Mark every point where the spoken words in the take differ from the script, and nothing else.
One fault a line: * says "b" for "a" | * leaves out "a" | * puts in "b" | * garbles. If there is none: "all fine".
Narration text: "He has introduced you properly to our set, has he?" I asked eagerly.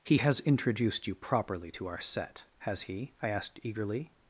all fine